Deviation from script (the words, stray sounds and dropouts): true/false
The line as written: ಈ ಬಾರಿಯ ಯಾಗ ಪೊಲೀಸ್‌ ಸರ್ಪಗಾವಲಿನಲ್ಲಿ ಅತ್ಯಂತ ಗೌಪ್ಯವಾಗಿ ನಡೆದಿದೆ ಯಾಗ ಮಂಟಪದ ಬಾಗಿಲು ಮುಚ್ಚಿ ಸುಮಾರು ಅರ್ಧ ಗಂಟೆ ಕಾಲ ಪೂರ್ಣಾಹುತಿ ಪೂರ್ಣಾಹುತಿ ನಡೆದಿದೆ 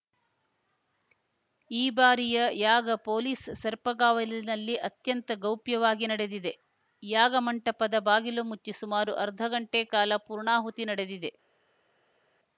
true